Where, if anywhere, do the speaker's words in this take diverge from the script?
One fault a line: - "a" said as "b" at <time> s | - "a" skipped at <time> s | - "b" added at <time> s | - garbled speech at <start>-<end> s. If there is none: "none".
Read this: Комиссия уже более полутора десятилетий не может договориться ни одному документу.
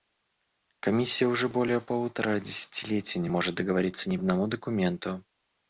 none